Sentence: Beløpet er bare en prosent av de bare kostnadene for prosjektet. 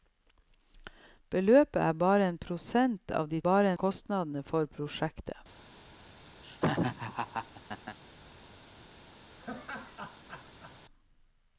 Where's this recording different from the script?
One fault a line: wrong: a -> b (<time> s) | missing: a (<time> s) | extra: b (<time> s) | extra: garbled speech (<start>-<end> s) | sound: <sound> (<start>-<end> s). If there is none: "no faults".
sound: laugh (6.4-8.0 s)
sound: laugh (9.4-10.8 s)